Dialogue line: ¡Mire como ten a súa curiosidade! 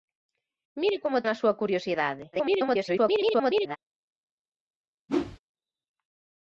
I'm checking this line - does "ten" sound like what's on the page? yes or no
no